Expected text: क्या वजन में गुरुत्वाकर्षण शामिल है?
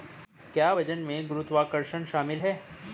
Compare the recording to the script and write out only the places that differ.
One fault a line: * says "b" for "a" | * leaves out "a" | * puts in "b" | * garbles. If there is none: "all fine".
all fine